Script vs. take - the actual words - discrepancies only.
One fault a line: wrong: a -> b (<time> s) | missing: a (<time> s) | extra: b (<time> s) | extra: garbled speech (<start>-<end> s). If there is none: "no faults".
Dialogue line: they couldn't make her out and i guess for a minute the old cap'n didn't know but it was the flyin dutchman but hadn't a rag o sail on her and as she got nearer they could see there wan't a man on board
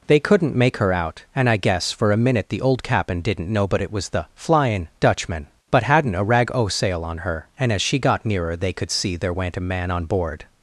no faults